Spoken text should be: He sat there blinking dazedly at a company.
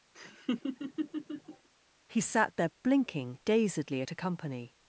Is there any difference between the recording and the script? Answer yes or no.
no